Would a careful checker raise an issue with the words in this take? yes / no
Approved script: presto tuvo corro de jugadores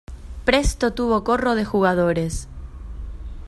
no